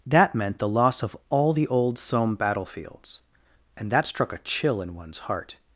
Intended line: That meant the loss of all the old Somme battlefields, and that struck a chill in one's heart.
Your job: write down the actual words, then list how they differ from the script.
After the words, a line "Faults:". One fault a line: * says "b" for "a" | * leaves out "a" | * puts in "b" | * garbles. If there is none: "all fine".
That meant the loss of all the old Somme battlefields, and that struck a chill in one's heart.
Faults:
all fine